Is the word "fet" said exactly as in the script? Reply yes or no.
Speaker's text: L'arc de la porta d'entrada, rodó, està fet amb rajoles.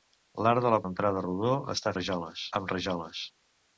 no